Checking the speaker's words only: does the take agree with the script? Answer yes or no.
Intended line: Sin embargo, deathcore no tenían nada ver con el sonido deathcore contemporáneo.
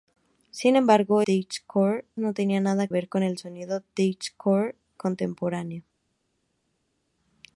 yes